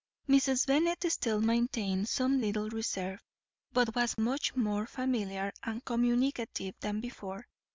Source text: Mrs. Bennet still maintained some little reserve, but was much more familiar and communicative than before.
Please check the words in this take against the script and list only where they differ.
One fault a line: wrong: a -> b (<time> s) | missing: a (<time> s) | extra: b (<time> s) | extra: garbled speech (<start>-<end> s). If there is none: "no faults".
no faults